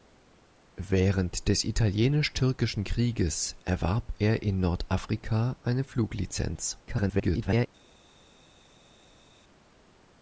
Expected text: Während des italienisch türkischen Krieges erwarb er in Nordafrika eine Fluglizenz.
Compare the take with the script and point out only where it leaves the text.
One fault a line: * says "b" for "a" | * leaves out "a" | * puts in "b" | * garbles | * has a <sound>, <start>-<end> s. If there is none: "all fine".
* garbles